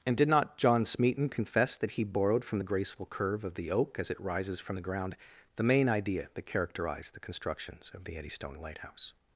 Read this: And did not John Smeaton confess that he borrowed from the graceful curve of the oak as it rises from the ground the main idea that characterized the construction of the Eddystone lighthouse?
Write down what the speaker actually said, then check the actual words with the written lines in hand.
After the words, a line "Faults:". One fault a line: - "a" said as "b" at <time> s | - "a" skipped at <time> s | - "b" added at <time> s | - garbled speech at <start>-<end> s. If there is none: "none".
And did not John Smeaton confess that he borrowed from the graceful curve of the oak as it rises from the ground the main idea that characterized the constructions of the Eddystone lighthouse?
Faults:
- "construction" said as "constructions" at 7.2 s